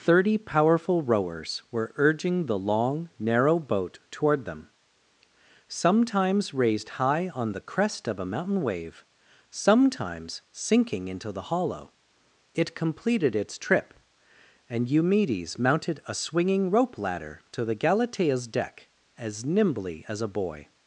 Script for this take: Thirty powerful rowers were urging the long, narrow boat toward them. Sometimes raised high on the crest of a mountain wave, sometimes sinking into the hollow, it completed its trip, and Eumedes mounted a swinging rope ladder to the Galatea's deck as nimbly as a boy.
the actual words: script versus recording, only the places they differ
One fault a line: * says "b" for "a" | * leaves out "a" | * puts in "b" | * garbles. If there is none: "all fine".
all fine